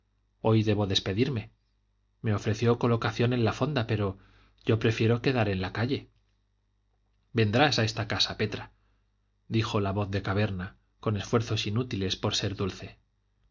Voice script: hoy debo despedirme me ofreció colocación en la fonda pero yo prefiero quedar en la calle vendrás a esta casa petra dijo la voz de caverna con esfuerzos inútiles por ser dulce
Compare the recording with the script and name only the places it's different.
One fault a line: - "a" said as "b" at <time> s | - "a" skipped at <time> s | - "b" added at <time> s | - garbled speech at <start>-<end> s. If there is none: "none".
none